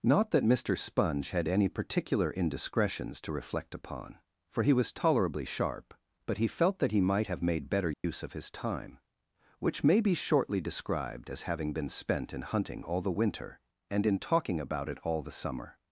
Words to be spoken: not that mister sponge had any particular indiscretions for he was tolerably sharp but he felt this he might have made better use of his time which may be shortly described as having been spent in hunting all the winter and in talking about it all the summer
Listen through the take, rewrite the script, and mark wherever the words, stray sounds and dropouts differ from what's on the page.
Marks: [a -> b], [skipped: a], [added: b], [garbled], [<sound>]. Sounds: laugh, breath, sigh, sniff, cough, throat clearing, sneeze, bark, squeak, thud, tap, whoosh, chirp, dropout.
not that mister sponge had any particular indiscretions [added: to reflect upon] for he was tolerably sharp but he felt [this -> that] he might have made better use [dropout] of his time which may be shortly described as having been spent in hunting all the winter and in talking about it all the summer